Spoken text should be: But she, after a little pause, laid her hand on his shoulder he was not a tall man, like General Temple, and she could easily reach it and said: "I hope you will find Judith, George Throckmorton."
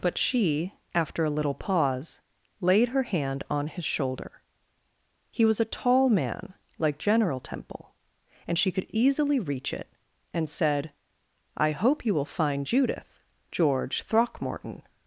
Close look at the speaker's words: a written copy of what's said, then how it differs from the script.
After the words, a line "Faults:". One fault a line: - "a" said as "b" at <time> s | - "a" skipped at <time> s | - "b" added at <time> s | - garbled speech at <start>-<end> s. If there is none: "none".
But she, after a little pause, laid her hand on his shoulder he was a tall man, like General Temple, and she could easily reach it and said: "I hope you will find Judith, George Throckmorton."
Faults:
- "not" skipped at 5.6 s